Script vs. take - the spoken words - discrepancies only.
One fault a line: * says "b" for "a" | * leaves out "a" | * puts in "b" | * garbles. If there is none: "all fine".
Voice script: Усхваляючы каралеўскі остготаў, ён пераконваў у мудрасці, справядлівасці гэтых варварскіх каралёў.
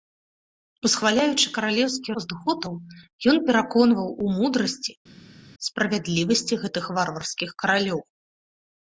all fine